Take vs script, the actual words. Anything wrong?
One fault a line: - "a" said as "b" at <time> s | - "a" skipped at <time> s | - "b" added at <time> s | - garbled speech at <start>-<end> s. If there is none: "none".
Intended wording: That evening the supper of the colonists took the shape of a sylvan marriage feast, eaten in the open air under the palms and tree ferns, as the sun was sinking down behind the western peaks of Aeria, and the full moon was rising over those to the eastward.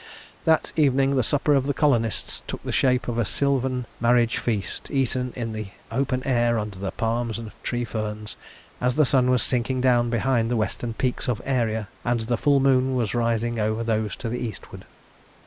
none